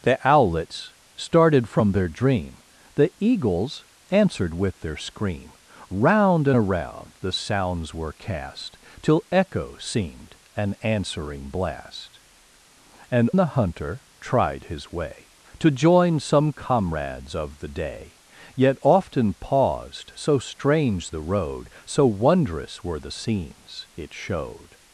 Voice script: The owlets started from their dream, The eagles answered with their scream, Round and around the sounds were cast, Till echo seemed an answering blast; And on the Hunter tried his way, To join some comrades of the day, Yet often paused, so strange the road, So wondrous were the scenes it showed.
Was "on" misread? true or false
true